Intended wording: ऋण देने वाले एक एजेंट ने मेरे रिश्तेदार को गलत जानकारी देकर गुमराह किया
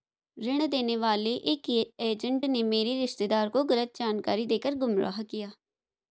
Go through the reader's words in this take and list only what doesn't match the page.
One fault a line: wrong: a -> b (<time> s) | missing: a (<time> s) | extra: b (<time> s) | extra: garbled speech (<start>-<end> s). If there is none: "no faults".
no faults